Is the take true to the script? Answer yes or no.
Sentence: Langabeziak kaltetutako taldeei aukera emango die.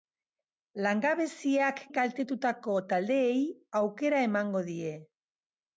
yes